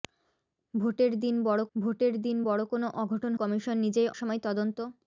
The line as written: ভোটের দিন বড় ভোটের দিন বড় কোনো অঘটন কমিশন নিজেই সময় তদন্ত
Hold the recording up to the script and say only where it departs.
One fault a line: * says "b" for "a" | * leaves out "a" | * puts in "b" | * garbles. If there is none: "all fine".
all fine